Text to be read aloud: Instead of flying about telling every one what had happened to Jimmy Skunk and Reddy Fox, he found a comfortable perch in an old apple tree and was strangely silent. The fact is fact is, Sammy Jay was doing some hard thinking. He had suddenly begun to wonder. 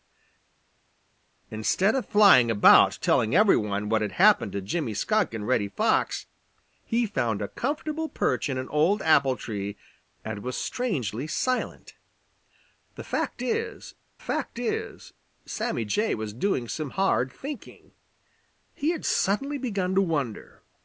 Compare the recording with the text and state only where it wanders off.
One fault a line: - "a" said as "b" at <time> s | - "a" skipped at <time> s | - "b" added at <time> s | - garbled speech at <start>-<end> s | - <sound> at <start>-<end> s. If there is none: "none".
none